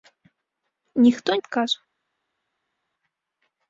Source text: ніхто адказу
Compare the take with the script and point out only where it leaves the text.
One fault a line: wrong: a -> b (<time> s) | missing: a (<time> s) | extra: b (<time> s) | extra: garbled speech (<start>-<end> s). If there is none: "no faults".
no faults